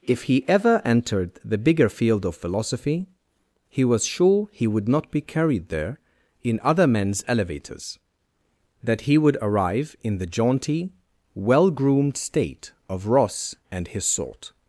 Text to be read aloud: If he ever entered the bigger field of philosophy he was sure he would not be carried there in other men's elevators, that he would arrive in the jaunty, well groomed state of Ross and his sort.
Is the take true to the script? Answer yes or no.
yes